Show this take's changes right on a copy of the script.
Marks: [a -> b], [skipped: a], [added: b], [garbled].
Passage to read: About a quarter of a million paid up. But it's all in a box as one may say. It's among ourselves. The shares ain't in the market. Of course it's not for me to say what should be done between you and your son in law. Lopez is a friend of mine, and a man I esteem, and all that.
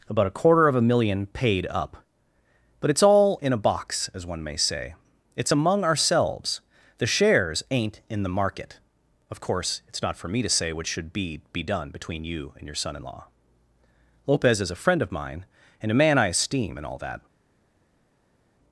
About a quarter of a million paid up. But it's all in a box as one may say. It's among ourselves. The shares ain't in the market. Of course it's not for me to say what should be [added: be] done between you and your son in law. Lopez is a friend of mine, and a man I esteem, and all that.